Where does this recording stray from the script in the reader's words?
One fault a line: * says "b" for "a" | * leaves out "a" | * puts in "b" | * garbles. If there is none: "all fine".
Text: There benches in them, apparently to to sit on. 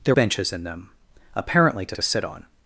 all fine